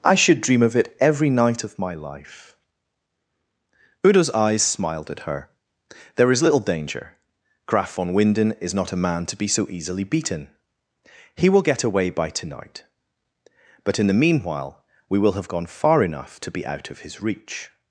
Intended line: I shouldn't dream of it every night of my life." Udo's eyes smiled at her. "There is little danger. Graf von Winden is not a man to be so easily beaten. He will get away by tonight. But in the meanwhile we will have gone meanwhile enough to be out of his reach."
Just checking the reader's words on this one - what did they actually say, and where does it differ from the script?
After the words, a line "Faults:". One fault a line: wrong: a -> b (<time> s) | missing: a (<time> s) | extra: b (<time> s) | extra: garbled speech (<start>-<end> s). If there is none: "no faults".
I should dream of it every night of my life." Udo's eyes smiled at her. "There is little danger. Graf von Winden is not a man to be so easily beaten. He will get away by tonight. But in the meanwhile we will have gone far enough to be out of his reach."
Faults:
wrong: shouldn't -> should (0.1 s)
wrong: meanwhile -> far (15.7 s)